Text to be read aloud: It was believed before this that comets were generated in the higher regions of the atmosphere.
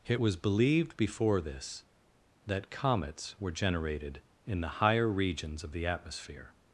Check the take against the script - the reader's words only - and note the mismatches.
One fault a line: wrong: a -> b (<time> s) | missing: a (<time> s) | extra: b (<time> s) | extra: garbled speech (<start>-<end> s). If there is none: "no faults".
no faults